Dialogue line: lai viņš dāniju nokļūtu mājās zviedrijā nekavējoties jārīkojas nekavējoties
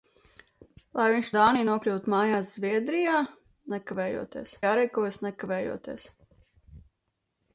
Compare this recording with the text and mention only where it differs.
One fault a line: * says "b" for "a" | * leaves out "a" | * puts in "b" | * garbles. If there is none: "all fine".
all fine